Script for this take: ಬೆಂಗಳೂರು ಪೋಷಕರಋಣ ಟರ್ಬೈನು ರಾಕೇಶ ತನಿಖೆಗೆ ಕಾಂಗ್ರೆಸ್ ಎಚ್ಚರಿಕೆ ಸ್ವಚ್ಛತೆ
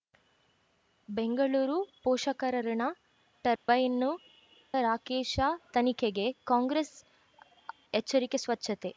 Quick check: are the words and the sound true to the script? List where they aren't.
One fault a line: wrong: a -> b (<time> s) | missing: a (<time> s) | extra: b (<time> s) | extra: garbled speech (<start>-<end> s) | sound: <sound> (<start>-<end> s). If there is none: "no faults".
sound: dropout (3.6-3.7 s)